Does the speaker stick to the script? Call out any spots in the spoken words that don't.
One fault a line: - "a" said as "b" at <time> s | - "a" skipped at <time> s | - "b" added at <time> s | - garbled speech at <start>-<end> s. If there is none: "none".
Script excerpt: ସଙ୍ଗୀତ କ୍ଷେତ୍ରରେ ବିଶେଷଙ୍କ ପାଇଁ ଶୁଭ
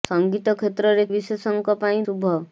none